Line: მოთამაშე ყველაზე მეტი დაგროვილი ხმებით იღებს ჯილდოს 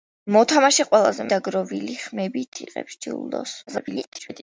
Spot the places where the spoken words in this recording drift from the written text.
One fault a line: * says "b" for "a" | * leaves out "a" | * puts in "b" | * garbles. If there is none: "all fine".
* leaves out "მეტი"
* garbles